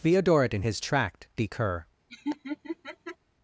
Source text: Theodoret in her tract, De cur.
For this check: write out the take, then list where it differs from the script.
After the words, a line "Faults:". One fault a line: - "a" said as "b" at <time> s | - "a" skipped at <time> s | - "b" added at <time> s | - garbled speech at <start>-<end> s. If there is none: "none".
Theodoret in his tract, De cur.
Faults:
- "her" said as "his" at 0.6 s